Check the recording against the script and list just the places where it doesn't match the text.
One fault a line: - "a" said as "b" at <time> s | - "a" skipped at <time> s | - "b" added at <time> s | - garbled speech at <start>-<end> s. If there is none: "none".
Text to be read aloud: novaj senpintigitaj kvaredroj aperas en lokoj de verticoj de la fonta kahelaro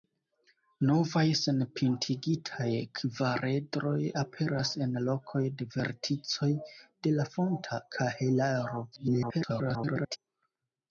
- garbled speech at 8.9-10.2 s